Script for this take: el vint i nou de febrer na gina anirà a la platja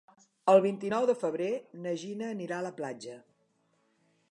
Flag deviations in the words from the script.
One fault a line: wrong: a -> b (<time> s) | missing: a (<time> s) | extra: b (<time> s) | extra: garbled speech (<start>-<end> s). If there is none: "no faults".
no faults